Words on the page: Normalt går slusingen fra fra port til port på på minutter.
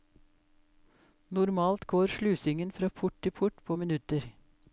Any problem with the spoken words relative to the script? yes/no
yes